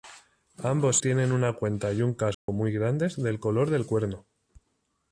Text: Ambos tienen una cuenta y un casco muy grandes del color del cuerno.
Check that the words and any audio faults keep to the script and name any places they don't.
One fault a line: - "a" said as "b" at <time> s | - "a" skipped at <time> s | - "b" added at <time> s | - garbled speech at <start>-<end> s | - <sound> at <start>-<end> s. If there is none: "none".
- dropout at 2.3-2.5 s